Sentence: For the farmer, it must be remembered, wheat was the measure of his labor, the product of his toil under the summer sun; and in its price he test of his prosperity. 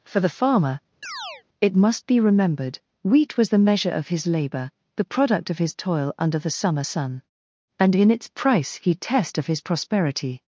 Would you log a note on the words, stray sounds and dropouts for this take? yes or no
yes